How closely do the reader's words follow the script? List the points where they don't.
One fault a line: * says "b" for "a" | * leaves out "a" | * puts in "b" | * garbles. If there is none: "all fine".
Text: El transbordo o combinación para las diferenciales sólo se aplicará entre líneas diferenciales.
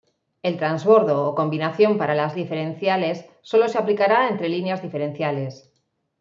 all fine